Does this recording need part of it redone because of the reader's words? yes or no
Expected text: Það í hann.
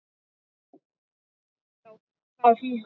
no